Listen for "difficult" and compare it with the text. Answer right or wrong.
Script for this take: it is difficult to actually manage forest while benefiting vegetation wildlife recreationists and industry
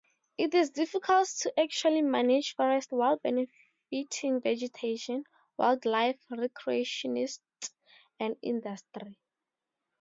right